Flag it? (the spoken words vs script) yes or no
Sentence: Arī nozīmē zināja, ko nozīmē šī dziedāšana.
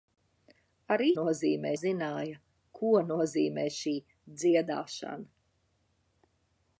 no